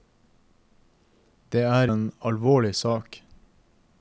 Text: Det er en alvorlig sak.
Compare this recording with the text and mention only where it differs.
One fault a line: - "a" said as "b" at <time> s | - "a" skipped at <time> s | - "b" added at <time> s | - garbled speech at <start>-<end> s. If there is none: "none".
none